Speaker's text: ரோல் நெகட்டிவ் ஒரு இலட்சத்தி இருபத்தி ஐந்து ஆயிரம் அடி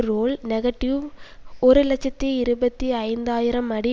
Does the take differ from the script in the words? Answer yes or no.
no